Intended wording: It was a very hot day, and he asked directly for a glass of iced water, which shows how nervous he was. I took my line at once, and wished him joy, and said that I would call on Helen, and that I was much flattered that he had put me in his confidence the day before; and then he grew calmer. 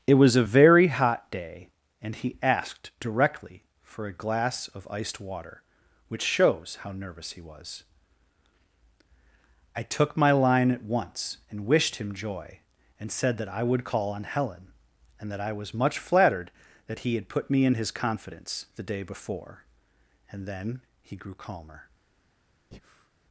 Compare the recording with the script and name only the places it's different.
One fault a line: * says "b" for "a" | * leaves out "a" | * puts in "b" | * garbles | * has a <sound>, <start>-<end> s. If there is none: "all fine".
* has a breath, 22.7-23.1 s